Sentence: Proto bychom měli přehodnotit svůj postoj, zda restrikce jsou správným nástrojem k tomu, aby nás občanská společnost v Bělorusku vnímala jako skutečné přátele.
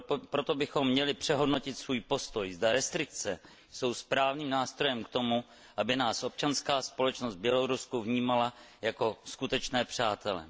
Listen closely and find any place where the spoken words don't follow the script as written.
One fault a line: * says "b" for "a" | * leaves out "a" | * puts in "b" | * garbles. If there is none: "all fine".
all fine